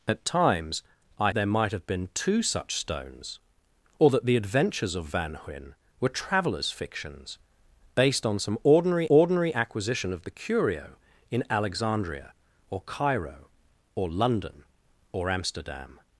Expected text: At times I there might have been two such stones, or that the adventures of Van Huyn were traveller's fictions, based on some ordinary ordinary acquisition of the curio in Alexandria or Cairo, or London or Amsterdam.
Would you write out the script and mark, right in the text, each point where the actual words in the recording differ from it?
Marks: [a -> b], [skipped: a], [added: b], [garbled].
At times I there might have been two such stones, or that the adventures of Van Huyn were traveller's fictions, based on some ordinary ordinary acquisition of the curio in Alexandria or Cairo, or London or Amsterdam.